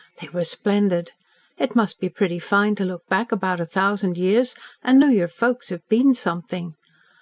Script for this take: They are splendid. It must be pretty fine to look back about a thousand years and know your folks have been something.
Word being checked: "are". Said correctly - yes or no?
no